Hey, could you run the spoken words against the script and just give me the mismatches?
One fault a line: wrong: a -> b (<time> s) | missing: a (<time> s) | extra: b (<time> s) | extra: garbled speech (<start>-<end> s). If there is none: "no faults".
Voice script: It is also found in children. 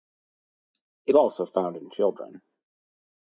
missing: is (1.1 s)